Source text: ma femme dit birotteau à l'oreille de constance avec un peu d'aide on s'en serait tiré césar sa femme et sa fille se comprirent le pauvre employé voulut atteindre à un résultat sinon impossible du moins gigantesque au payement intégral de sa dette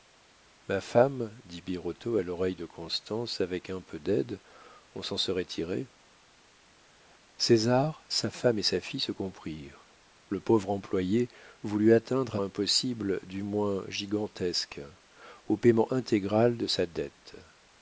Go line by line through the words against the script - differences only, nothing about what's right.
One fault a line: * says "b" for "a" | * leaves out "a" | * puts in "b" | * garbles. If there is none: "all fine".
* leaves out "un résultat sinon"